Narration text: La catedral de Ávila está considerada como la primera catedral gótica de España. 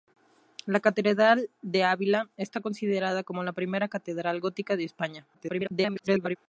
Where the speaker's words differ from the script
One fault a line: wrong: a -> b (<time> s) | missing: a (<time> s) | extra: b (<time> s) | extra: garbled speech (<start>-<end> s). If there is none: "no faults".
extra: garbled speech (5.3-6.4 s)